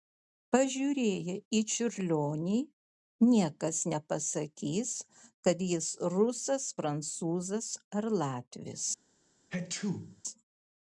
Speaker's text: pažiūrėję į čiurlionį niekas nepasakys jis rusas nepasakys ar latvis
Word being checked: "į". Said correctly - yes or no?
yes